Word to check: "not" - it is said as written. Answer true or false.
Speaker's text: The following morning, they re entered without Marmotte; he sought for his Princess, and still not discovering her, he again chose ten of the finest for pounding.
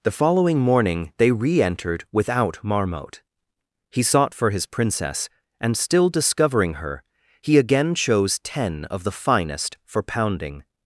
false